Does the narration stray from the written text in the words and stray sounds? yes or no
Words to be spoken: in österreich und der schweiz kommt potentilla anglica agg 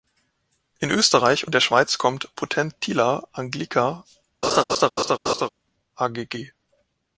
yes